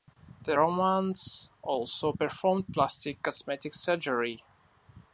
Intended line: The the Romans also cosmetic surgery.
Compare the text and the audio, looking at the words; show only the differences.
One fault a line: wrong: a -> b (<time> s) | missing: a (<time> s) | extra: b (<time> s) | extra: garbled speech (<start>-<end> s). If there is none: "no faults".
missing: the (0.6 s)
extra: performed plastic (2.1 s)